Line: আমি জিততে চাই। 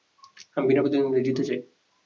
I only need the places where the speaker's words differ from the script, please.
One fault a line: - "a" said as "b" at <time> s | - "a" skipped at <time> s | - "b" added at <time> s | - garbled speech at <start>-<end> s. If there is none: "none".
- "বিনা প্রতিদ্বন্দ্বিতায়" added at 0.7 s